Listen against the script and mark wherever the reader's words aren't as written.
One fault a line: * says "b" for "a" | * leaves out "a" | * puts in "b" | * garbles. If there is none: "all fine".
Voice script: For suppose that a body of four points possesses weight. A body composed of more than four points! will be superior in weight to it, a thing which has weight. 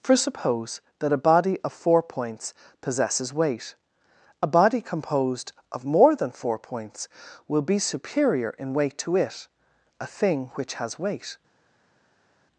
all fine